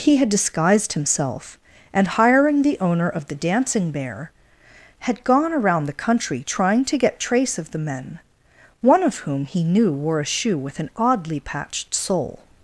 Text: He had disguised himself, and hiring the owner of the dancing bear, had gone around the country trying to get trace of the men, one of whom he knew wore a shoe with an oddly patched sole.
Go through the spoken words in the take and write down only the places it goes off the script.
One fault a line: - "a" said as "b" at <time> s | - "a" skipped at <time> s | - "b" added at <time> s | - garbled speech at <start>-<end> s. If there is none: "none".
none